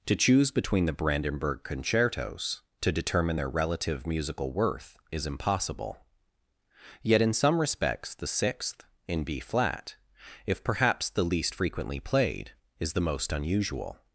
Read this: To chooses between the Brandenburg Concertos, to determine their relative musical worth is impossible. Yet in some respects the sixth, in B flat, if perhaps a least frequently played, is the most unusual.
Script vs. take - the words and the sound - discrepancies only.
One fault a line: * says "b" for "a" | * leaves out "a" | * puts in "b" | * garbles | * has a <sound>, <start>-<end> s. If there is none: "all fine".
* says "choose" for "chooses"
* says "the" for "a"